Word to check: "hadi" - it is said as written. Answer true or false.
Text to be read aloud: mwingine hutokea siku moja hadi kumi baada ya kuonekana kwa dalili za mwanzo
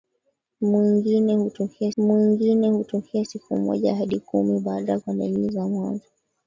true